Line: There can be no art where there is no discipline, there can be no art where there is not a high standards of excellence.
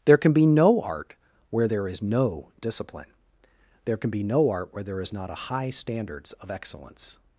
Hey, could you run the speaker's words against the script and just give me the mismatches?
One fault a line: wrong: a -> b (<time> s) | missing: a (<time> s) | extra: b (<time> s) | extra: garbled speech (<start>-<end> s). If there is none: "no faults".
no faults